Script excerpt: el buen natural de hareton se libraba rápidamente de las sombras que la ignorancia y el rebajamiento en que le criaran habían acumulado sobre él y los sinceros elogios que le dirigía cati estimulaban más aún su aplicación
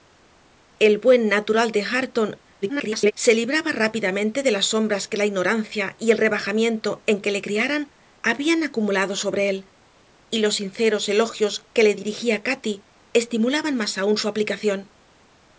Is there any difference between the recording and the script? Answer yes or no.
yes